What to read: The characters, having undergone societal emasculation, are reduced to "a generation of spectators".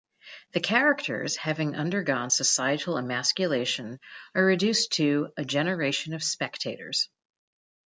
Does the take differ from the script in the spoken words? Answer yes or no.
no